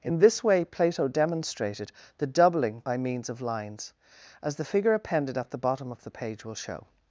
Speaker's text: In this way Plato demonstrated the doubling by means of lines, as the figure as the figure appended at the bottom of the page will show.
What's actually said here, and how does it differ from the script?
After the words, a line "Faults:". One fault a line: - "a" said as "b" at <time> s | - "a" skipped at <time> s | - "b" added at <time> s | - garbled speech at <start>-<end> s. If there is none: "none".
In this way Plato demonstrated the doubling by means of lines, as the figure appended at the bottom of the page will show.
Faults:
- "as the figure" skipped at 4.9 s